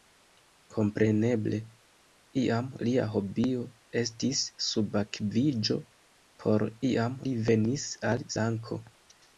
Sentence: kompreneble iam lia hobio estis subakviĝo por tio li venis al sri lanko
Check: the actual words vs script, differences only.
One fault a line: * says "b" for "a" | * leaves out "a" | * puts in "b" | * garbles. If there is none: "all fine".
* says "iam" for "tio"
* leaves out "sri"